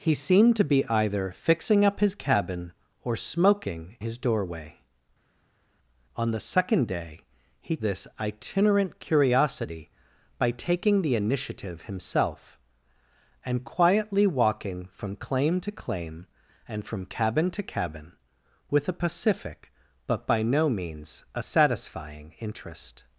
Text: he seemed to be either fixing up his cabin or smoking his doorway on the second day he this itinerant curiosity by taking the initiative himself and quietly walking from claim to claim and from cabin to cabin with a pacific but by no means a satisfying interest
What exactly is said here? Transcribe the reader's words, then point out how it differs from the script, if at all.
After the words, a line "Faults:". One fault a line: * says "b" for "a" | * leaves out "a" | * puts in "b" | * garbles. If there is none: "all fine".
he seemed to be either fixing up his cabin or smoking his doorway on the second day he this itinerant curiosity by taking the initiative himself and quietly walking from claim to claim and from cabin to cabin with a pacific but by no means a satisfying interest
Faults:
all fine